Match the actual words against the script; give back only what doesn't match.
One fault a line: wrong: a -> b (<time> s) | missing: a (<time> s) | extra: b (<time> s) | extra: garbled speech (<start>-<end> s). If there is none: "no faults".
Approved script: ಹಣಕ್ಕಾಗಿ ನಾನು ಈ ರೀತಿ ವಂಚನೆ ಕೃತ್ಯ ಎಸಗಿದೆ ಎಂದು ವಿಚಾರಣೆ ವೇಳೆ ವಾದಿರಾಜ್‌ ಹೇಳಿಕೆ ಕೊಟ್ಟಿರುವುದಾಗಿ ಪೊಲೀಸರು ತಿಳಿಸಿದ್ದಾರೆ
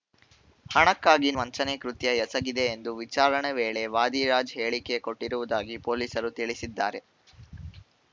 missing: ನಾನು ಈ ರೀತಿ (1.3 s)